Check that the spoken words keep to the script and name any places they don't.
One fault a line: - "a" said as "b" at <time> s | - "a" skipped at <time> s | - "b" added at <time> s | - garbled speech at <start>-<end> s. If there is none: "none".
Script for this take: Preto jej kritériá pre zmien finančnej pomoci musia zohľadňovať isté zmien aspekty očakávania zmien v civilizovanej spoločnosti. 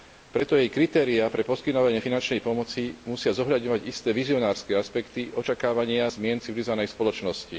- "zmien" said as "poskytovanie" at 1.4 s
- "zmien" said as "vizionárske" at 4.1 s